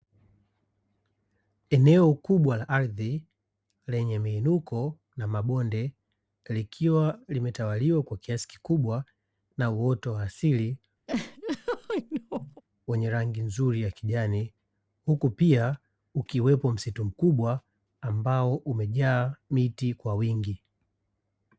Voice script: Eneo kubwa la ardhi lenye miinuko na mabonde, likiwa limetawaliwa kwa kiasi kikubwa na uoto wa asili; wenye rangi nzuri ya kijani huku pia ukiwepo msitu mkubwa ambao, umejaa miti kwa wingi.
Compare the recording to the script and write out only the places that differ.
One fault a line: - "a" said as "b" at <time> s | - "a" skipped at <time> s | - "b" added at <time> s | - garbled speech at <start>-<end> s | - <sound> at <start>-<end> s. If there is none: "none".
- laugh at 11.1-12.6 s